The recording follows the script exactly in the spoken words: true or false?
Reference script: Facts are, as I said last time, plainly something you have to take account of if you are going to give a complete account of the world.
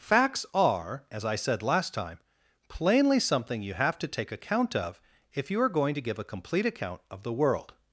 true